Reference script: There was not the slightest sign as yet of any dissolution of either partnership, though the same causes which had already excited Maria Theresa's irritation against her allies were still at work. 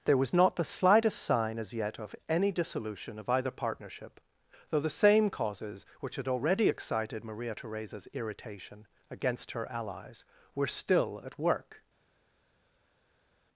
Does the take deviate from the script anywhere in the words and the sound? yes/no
no